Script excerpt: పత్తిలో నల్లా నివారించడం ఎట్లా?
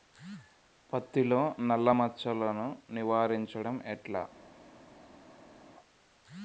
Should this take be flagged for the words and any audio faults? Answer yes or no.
yes